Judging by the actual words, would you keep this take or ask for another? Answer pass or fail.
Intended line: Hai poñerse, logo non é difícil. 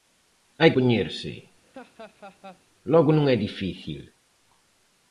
pass